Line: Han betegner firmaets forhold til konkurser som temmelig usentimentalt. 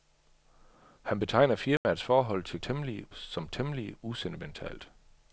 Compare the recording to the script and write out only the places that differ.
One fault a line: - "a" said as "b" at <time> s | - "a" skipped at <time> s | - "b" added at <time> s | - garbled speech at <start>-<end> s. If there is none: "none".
- "konkurser" said as "temmelig" at 2.6 s